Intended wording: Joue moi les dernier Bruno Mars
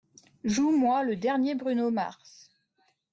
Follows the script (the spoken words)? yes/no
no